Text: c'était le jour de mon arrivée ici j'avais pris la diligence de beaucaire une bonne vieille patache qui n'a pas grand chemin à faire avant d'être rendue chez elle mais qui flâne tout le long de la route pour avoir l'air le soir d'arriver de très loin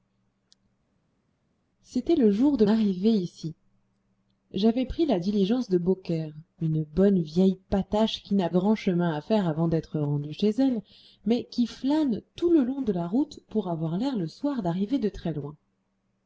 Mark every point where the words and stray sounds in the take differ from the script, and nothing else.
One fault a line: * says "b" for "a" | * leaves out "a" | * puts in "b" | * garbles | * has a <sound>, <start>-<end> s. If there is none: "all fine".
* leaves out "mon"
* leaves out "pas"